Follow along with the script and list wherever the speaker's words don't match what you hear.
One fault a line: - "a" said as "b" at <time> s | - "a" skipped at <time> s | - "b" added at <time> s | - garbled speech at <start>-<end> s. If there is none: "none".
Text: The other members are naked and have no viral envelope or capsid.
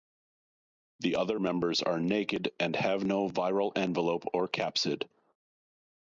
none